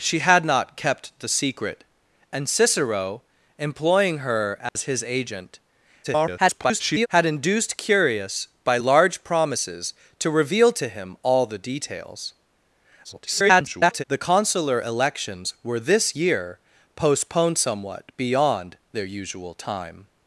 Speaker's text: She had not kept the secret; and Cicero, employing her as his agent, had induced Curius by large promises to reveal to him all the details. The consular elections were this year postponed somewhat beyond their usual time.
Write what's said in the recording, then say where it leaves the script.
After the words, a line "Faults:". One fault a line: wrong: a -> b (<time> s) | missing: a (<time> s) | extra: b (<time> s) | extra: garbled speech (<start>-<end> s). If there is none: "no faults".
She had not kept the secret; and Cicero, employing her as his agent, [garbled] had induced Curius by large promises to reveal to him all the details. [garbled] The consular elections were this year postponed somewhat beyond their usual time.
Faults:
extra: garbled speech (6.0-7.1 s)
extra: garbled speech (13.0-14.0 s)